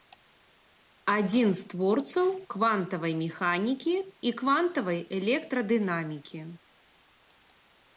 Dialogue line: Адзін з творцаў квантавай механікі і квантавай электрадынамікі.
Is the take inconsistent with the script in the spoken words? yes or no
no